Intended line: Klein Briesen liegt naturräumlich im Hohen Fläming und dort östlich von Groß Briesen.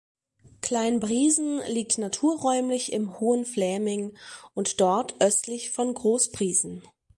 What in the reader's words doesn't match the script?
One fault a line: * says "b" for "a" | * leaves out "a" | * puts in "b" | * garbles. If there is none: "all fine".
all fine